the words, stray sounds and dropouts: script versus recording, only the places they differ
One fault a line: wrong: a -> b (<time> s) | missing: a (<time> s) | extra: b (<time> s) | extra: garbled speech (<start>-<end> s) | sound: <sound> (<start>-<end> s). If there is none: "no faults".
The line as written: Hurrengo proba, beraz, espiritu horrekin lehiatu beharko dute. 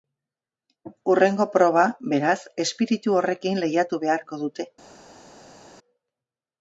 no faults